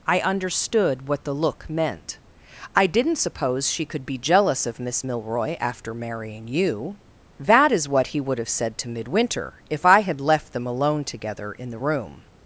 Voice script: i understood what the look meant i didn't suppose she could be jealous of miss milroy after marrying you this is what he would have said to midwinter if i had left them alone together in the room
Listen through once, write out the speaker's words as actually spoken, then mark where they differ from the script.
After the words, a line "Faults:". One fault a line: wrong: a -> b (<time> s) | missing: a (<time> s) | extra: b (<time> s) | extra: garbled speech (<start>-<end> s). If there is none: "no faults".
i understood what the look meant i didn't suppose she could be jealous of miss milroy after marrying you that is what he would have said to midwinter if i had left them alone together in the room
Faults:
wrong: this -> that (7.4 s)